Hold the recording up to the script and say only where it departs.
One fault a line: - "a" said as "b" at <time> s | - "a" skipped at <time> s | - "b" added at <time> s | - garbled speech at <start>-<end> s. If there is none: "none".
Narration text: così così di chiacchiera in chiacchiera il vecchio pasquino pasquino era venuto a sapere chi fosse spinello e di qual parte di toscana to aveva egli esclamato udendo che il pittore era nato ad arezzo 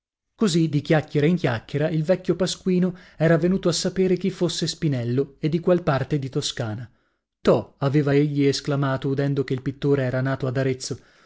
- "così" skipped at 0.7 s
- "pasquino" skipped at 3.0 s